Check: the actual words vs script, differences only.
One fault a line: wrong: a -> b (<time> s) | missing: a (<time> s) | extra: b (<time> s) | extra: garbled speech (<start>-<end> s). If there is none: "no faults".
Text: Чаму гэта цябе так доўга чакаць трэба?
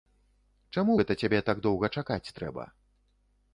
no faults